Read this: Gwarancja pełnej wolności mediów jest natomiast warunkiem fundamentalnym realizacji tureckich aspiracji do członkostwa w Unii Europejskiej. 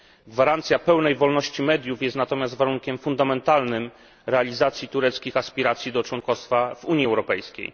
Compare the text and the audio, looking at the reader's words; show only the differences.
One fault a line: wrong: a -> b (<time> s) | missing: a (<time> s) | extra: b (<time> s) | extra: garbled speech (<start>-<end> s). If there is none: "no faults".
no faults